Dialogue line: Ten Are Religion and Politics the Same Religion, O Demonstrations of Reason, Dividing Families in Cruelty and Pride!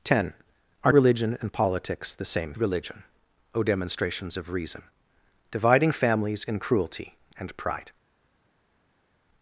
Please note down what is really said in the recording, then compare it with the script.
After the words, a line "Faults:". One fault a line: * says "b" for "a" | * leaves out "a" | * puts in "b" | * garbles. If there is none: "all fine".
Ten Are Religion and Politics the Same Religion, O Demonstrations of Reason, Dividing Families in Cruelty and Pride!
Faults:
all fine